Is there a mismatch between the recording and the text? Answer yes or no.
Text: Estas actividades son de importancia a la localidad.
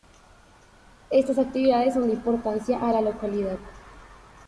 no